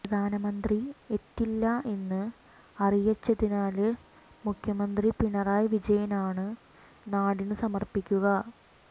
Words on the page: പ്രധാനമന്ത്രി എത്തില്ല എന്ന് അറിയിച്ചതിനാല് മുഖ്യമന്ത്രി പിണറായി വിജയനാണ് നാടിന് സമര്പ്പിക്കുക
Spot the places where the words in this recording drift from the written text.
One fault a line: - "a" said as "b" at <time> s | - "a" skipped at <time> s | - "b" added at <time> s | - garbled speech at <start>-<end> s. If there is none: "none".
none